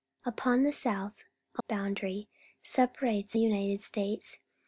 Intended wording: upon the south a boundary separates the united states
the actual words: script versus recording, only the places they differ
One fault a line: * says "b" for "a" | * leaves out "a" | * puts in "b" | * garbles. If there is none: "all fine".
all fine